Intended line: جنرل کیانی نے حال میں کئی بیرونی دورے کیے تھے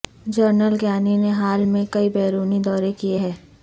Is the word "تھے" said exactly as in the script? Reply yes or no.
no